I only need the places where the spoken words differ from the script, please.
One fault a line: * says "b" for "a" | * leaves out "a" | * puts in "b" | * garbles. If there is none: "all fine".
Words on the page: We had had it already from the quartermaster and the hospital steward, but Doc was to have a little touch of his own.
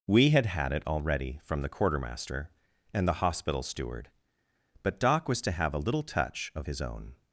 all fine